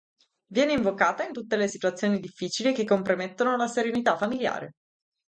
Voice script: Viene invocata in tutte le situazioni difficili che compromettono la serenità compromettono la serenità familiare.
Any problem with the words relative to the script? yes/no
yes